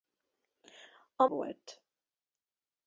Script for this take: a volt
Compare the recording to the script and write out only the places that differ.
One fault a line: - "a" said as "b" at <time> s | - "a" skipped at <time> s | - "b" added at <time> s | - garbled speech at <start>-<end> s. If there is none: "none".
none